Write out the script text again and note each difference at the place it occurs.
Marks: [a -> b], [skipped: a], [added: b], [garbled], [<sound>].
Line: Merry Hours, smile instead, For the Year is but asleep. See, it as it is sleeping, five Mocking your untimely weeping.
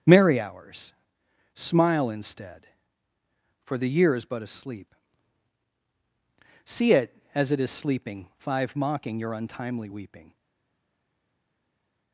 Merry Hours, smile instead, For the Year is but asleep. See, it as it is sleeping, five Mocking your untimely weeping.